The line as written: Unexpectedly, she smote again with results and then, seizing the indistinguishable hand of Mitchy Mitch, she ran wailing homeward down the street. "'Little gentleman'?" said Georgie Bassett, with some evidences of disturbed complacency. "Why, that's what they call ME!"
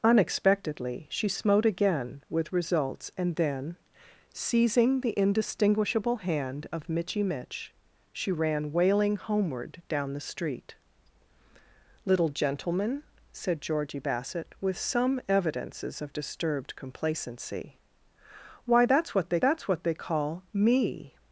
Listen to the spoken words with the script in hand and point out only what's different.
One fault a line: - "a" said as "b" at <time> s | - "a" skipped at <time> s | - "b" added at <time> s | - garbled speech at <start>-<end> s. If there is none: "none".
- "that's what they" added at 19.4 s